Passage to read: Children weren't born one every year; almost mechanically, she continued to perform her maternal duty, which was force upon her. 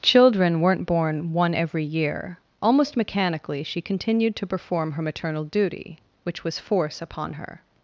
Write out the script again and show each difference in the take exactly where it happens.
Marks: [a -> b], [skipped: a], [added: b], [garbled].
Children weren't born one every year; almost mechanically, she continued to perform her maternal duty, which was force upon her.